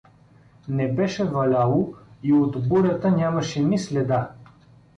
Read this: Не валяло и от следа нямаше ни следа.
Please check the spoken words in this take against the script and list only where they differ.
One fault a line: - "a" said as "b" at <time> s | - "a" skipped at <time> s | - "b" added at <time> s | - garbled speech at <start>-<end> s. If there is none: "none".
- "беше" added at 0.9 s
- "следа" said as "бурята" at 2.7 s